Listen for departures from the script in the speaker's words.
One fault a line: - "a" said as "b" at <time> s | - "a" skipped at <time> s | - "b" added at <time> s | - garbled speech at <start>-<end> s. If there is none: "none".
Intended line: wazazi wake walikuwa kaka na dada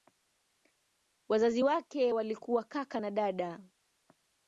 none